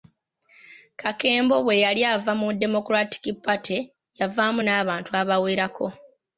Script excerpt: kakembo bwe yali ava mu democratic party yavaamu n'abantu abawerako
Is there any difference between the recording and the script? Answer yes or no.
no